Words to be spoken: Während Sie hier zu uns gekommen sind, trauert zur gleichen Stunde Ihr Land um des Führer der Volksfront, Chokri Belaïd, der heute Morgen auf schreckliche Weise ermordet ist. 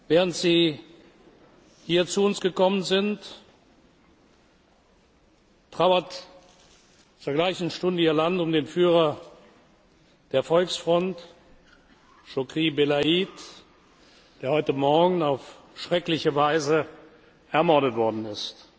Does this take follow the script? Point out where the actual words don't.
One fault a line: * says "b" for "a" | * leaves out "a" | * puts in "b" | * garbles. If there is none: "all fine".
* says "den" for "des"
* puts in "worden"